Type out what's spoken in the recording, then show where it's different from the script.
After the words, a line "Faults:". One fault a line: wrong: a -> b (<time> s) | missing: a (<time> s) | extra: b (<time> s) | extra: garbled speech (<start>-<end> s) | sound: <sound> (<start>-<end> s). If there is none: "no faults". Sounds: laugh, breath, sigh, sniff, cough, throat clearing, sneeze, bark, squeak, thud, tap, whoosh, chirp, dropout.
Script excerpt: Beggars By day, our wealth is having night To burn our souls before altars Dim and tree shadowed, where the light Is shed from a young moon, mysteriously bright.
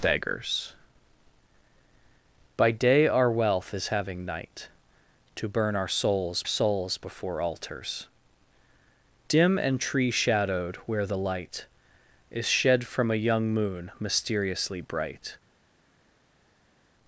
Beggars By day, our wealth is having night To burn our souls souls before altars Dim and tree shadowed, where the light Is shed from a young moon, mysteriously bright.
Faults:
extra: souls (6.4 s)